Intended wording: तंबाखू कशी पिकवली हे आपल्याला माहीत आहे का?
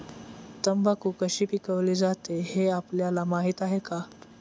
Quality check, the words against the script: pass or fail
fail